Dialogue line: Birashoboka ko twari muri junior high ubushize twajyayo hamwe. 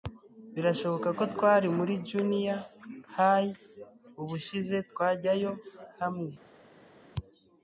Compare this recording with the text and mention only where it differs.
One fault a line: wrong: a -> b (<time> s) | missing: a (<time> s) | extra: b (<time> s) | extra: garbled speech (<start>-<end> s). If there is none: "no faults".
no faults